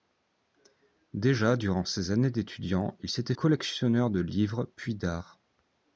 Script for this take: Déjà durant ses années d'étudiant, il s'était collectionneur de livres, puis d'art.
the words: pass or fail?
pass